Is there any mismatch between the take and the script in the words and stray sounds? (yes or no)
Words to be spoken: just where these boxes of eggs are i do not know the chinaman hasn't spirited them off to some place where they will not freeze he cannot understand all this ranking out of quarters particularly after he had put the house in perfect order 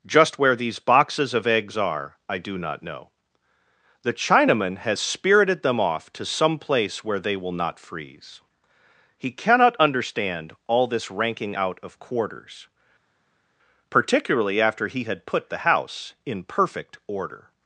yes